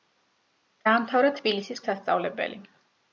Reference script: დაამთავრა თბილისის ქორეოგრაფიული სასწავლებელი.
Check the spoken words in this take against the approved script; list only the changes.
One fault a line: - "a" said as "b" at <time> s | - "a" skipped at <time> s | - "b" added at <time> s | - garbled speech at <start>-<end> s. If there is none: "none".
- "ქორეოგრაფიული" skipped at 1.8 s